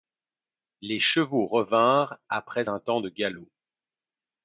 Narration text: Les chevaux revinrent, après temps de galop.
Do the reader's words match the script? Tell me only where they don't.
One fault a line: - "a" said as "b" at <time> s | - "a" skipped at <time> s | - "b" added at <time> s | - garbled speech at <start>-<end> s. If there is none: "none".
- "un" added at 2.7 s